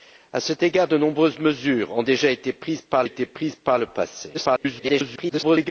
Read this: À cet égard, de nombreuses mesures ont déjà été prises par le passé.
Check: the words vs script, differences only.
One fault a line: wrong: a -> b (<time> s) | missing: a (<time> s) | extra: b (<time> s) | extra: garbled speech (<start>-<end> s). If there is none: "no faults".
extra: été prises par (3.0 s)
extra: garbled speech (4.3-5.7 s)